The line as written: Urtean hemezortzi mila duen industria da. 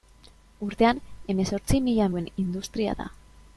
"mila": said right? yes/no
yes